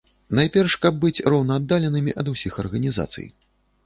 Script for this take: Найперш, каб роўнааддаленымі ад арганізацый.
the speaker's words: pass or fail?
fail